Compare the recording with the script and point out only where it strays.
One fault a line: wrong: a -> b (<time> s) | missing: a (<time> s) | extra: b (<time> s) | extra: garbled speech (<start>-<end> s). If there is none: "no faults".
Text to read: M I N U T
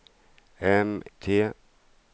missing: I N U (1.0 s)